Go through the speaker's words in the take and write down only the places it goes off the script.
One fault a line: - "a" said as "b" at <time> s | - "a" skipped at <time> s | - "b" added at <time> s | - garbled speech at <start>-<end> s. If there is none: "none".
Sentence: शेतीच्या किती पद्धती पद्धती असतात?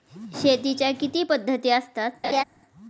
- "पद्धती" skipped at 1.7 s